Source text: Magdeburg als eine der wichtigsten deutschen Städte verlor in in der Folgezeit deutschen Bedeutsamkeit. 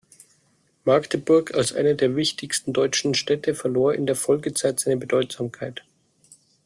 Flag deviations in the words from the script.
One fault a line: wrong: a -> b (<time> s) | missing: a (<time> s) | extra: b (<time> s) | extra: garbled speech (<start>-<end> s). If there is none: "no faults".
missing: in (4.1 s)
wrong: deutschen -> seine (4.8 s)